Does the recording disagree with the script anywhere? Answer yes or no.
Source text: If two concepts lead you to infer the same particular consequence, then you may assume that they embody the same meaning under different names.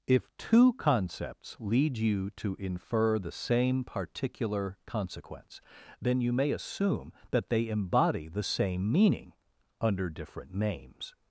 no